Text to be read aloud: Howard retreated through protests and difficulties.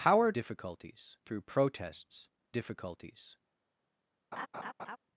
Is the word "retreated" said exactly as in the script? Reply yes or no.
no